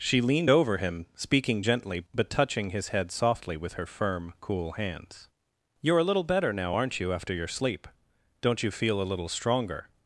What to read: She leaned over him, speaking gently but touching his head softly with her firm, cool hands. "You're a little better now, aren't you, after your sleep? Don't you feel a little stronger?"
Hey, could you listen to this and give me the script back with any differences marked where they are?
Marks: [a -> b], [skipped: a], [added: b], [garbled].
She leaned over him, speaking gently but touching his head softly with her firm, cool hands. "You're a little better now, aren't you, after your sleep? Don't you feel a little stronger?"